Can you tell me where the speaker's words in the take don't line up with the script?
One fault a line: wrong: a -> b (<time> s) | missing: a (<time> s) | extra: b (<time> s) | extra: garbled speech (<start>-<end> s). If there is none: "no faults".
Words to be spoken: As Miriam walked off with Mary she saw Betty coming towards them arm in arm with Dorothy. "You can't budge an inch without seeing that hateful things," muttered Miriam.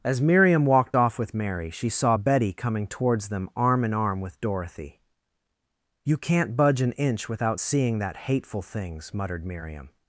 no faults